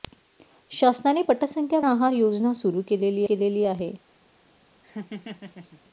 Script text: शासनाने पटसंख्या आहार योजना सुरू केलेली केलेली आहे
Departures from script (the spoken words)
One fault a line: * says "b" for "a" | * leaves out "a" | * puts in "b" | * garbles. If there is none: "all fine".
all fine